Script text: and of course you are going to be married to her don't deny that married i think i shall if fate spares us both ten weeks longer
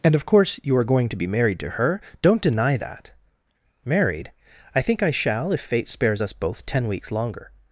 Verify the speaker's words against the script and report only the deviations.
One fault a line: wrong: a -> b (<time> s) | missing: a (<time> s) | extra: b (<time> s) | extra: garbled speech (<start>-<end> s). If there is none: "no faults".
no faults